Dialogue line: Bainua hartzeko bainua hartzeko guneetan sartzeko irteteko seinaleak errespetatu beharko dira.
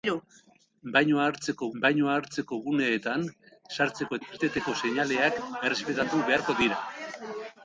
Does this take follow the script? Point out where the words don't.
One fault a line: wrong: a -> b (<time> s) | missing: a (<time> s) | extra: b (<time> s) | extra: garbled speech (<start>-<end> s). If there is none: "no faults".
no faults